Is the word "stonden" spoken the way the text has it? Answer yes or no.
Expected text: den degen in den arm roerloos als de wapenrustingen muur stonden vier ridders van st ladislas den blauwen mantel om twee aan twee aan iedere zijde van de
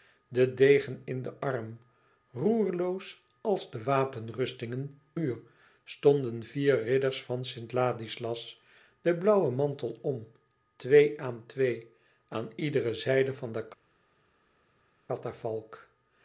yes